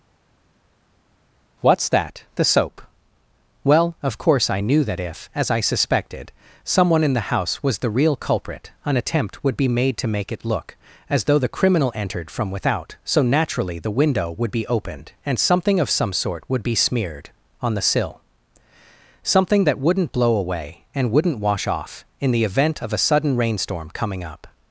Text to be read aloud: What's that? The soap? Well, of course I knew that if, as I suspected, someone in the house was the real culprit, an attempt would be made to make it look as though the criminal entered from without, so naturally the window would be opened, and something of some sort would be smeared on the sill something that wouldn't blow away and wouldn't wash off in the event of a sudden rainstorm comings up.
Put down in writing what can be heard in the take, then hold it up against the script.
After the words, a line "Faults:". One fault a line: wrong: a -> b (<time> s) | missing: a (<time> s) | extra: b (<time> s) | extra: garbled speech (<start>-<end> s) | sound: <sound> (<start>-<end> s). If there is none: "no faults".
What's that? The soap? Well, of course I knew that if, as I suspected, someone in the house was the real culprit, an attempt would be made to make it look as though the criminal entered from without, so naturally the window would be opened, and something of some sort would be smeared on the sill something that wouldn't blow away and wouldn't wash off in the event of a sudden rainstorm coming up.
Faults:
wrong: comings -> coming (23.9 s)